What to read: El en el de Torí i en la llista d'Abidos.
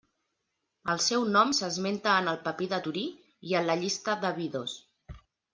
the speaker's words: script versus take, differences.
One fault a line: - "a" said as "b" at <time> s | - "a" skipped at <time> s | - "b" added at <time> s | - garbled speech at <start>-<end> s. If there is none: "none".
- "seu nom s'esmenta" added at 1.1 s
- "papir" added at 2.5 s